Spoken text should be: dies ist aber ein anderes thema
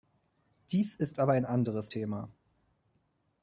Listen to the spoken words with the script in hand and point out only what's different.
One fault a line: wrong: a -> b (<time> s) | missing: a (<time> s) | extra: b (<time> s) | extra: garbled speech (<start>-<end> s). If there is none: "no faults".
no faults